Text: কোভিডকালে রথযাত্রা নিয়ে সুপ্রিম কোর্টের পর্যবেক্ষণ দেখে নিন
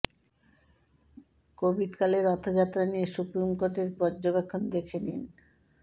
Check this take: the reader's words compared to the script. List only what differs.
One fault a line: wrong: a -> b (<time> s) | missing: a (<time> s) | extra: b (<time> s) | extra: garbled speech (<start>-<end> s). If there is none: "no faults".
no faults